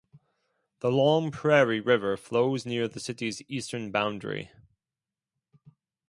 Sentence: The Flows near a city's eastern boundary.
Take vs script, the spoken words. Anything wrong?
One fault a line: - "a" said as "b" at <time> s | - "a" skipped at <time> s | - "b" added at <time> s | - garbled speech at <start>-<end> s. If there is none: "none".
- "Long Prairie River" added at 0.9 s
- "a" said as "the" at 2.9 s